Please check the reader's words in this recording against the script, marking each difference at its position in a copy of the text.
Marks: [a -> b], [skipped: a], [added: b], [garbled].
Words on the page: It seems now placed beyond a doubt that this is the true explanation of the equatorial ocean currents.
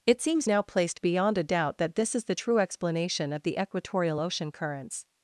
It seems now placed beyond a doubt that this is the true explanation of the equatorial ocean currents.